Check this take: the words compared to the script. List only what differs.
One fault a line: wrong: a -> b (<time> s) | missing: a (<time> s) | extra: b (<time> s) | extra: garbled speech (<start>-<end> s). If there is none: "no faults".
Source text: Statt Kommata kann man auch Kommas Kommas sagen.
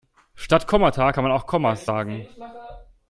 missing: Kommas (1.9 s)